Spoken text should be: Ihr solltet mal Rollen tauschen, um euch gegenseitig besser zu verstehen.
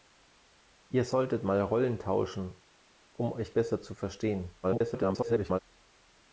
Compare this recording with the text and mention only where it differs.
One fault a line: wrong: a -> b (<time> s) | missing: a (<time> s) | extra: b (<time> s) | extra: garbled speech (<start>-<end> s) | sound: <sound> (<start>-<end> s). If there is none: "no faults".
missing: gegenseitig (3.5 s)
extra: garbled speech (4.6-5.6 s)